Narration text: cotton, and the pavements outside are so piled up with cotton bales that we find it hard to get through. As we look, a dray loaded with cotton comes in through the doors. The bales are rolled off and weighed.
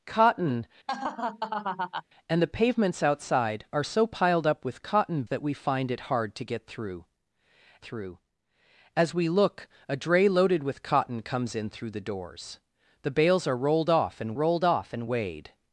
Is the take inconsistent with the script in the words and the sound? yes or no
yes